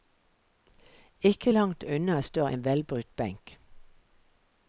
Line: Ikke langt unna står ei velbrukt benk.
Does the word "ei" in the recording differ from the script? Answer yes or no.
yes